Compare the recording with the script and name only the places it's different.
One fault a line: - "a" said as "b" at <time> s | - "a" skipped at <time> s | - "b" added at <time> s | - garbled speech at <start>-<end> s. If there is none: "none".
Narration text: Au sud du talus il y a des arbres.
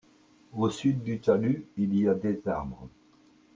none